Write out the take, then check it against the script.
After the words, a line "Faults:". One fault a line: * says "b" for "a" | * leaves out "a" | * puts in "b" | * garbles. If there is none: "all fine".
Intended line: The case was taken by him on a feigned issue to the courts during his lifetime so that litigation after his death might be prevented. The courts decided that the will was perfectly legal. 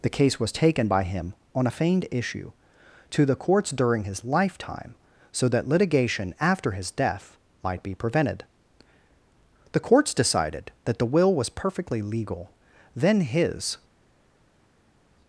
The case was taken by him on a feigned issue to the courts during his lifetime so that litigation after his death might be prevented. The courts decided that the will was perfectly legal. Then his
Faults:
* puts in "Then his"